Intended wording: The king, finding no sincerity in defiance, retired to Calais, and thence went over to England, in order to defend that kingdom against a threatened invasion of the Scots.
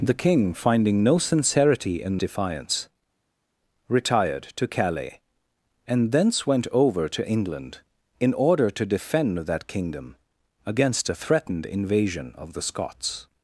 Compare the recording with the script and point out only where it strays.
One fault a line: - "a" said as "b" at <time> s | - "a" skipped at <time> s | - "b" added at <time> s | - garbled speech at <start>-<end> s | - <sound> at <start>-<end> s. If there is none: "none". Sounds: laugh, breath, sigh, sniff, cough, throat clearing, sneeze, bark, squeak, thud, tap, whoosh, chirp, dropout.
none